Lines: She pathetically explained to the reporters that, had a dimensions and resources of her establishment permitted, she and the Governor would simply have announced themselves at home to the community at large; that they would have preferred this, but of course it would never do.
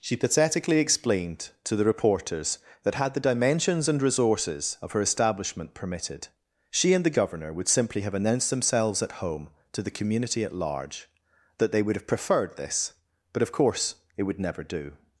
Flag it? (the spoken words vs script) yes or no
yes